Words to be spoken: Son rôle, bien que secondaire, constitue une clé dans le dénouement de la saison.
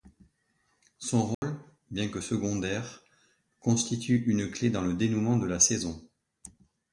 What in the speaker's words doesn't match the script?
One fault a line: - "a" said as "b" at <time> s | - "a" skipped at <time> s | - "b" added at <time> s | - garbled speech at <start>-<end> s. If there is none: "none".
none